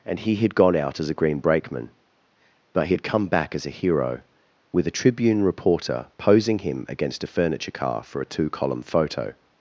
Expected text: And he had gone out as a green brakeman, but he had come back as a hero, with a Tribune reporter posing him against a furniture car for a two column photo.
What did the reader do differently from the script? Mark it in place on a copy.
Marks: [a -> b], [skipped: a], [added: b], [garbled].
And he had gone out as a green brakeman, but he had come back as a hero, with a Tribune reporter posing him against a furniture car for a two column photo.